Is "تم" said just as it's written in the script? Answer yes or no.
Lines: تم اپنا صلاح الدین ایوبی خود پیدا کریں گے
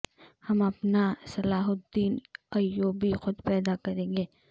no